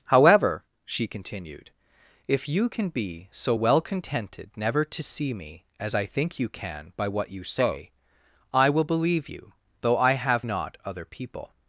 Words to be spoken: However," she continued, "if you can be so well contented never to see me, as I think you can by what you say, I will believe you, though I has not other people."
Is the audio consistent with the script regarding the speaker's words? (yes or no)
no